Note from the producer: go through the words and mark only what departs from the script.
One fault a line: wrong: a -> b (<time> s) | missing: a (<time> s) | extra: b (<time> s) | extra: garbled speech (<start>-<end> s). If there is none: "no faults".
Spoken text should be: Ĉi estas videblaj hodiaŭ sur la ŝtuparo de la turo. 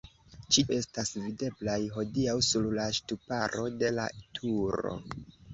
no faults